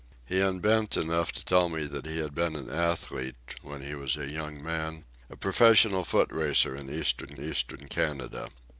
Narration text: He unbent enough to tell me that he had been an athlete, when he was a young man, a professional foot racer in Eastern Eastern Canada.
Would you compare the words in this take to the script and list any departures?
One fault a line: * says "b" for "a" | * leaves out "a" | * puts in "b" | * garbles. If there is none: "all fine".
all fine